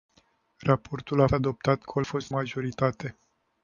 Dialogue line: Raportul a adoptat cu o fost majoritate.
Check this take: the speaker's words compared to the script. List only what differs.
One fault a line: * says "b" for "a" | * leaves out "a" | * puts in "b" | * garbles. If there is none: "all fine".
all fine